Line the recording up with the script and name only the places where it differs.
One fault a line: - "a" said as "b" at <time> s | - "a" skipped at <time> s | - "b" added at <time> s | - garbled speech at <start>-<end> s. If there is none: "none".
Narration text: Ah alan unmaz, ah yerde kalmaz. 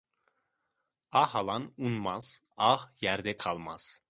none